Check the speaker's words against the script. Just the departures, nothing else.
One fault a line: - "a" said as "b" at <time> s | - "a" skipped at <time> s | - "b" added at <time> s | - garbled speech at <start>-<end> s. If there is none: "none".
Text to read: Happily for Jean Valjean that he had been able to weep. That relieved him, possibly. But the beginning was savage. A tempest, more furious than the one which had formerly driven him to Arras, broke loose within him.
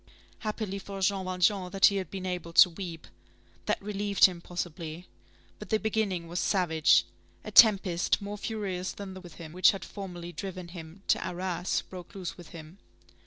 - "one" said as "within" at 9.2 s